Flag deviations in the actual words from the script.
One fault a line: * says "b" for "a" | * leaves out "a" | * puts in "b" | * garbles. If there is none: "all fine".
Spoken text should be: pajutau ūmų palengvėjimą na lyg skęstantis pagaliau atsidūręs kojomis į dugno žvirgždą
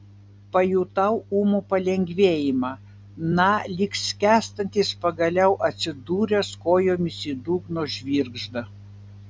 all fine